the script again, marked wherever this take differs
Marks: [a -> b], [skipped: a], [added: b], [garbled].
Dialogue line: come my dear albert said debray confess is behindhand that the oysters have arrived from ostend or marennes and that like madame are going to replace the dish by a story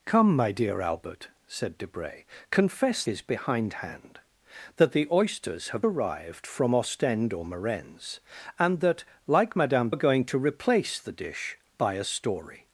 come my dear albert said debray confess is behindhand that the oysters have arrived from ostend or marennes and that like madame are going to replace the dish by a story